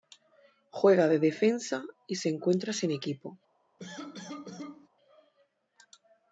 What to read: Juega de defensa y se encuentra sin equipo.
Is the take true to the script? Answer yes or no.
yes